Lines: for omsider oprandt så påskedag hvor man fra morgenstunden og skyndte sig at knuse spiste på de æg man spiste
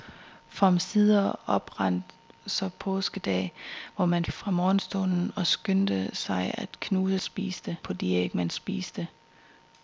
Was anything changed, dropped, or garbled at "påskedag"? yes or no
no